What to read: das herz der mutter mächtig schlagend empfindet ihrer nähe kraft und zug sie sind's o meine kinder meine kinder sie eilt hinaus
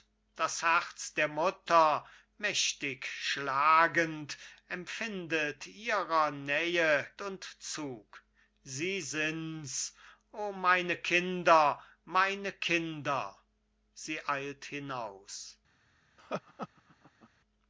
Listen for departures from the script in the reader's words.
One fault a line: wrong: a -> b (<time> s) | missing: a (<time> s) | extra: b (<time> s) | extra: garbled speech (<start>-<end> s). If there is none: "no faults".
missing: kraft (7.0 s)